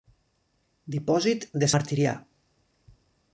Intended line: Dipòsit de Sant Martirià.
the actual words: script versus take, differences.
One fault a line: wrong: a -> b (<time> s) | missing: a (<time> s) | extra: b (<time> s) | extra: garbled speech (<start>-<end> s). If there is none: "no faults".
missing: Sant (1.7 s)